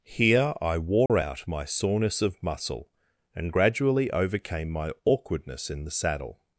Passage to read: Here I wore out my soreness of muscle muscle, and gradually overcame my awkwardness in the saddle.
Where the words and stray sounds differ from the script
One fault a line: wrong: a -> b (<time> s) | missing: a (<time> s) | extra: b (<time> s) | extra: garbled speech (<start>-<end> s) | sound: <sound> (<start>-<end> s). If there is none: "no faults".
sound: dropout (1.1-1.1 s)
missing: muscle (2.9 s)